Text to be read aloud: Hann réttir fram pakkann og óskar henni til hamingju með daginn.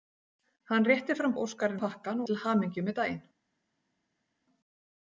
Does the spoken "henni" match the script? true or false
false